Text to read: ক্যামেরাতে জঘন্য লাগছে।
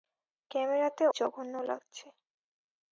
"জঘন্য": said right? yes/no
yes